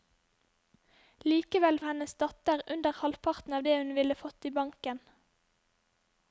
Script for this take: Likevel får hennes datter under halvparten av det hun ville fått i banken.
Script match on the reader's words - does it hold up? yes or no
no